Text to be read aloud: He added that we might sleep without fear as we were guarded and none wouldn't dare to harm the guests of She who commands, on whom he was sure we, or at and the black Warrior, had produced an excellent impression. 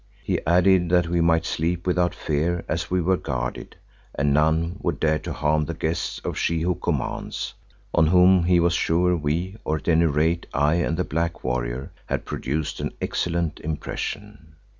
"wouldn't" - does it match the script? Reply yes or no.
no